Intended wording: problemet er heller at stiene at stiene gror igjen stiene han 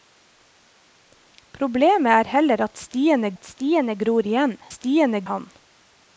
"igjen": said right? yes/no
yes